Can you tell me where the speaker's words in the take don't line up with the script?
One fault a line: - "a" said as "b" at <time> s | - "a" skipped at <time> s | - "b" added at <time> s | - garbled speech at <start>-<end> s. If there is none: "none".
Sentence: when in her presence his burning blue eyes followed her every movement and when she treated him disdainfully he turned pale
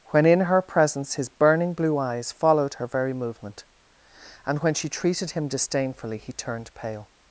- "every" said as "very" at 2.9 s